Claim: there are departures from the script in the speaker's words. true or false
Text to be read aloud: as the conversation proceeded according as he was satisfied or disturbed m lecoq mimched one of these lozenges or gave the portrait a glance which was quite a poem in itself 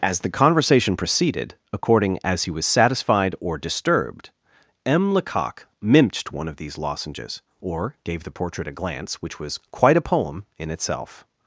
false